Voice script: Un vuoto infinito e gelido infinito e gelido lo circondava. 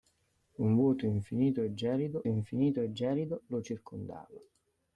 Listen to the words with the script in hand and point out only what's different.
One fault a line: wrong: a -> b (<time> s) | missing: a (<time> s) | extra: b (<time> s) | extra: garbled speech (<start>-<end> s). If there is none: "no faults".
no faults